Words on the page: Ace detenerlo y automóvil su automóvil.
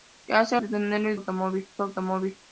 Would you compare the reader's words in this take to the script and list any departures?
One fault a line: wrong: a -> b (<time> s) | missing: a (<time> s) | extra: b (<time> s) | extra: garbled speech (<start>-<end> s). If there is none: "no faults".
no faults